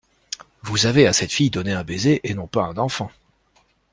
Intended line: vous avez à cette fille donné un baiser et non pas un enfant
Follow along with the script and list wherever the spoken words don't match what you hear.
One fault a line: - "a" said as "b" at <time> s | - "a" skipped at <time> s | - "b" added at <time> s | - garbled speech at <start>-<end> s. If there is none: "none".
none